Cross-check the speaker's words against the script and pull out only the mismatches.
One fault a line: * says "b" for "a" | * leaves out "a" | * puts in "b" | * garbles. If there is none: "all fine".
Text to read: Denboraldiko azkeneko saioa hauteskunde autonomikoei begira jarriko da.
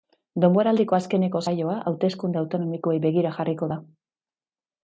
all fine